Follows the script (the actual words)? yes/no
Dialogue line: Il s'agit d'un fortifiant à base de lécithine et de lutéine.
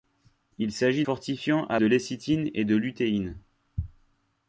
no